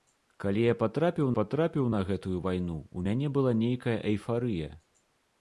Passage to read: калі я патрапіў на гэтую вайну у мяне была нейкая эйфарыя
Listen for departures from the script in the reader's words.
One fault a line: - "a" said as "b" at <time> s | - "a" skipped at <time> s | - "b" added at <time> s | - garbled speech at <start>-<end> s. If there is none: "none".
- "патрапіў" added at 1.3 s